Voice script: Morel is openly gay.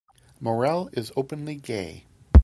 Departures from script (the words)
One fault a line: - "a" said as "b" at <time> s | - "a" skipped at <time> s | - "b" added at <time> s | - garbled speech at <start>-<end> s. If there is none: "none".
none